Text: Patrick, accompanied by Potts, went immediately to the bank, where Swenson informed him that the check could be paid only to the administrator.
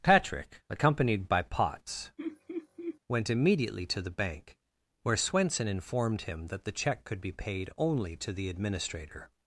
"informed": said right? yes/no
yes